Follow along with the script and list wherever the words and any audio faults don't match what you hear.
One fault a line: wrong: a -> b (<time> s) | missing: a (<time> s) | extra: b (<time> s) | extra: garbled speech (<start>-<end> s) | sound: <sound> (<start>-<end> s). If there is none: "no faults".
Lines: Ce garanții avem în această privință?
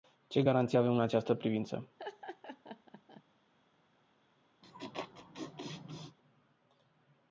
sound: laugh (2.0-3.2 s)
sound: laugh (4.6-6.2 s)